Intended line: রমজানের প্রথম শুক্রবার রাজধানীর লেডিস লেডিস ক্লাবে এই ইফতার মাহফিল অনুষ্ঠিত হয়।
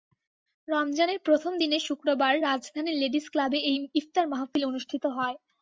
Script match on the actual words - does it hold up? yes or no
no